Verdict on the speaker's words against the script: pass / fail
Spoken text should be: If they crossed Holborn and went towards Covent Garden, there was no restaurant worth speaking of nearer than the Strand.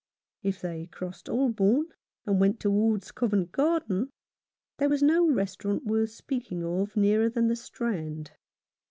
pass